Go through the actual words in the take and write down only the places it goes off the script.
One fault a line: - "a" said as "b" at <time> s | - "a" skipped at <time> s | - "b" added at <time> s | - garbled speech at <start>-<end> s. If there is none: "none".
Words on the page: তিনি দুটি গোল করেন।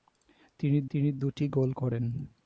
- "তিনি" added at 0.9 s